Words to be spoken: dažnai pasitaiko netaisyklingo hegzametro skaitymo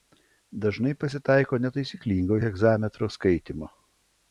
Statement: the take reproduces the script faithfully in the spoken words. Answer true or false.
true